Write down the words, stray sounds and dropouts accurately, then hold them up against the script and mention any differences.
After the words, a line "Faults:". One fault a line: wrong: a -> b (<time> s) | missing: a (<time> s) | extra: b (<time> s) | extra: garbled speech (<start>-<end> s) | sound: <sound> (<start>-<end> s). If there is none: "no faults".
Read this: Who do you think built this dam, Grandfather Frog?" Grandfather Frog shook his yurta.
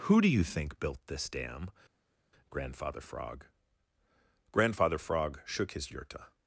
Who do you think built this dam, Grandfather Frog?" Grandfather Frog shook his yurta.
Faults:
no faults